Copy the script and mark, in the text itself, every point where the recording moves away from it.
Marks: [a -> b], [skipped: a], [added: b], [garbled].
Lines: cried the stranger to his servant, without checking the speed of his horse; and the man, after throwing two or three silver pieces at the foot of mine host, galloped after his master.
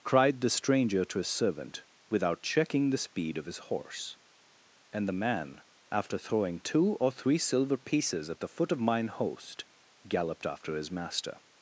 cried the stranger to his servant, without checking the speed of his horse; and the man, after throwing two or three silver pieces at the foot of mine host, galloped after his master.